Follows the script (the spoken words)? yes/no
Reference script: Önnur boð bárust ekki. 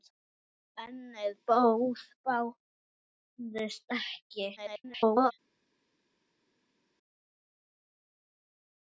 no